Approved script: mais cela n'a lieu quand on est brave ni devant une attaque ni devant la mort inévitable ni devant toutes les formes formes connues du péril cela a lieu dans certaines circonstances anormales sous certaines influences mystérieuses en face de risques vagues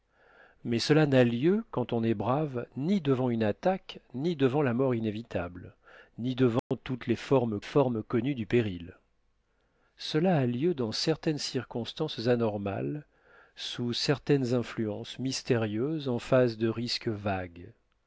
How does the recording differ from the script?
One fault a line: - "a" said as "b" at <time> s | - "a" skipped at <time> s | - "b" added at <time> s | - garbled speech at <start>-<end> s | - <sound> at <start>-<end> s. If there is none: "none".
- dropout at 6.6-6.7 s